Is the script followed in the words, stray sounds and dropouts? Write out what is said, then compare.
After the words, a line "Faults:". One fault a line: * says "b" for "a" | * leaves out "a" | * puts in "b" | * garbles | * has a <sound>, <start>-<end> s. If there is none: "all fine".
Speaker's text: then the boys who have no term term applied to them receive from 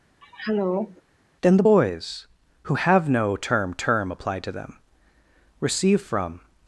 then the boys who have no term term applied to them receive from
Faults:
* has a throat clearing, 0.2-1.0 s